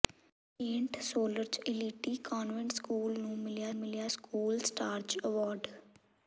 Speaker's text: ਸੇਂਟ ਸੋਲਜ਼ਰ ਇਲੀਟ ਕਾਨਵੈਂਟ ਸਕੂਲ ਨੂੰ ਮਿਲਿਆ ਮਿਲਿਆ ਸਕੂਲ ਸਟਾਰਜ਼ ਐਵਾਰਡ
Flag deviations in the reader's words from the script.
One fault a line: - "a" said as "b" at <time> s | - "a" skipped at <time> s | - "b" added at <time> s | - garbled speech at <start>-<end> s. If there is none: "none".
none